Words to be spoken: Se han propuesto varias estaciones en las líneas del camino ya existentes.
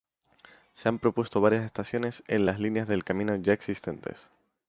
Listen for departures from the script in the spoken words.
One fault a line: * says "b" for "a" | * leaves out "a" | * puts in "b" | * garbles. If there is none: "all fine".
all fine